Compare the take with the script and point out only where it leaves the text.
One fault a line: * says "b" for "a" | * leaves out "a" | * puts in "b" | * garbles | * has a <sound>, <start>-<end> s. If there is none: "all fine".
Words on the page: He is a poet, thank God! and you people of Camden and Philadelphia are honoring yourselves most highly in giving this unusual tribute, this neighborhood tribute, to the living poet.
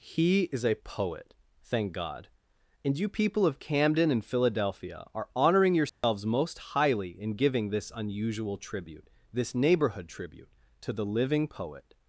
* has a dropout, 5.9-6.0 s